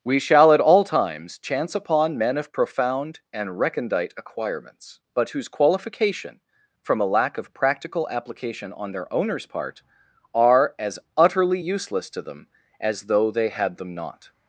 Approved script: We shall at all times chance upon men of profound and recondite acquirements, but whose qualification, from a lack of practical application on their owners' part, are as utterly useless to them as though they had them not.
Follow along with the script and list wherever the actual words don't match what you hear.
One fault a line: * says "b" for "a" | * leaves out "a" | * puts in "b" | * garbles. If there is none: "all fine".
all fine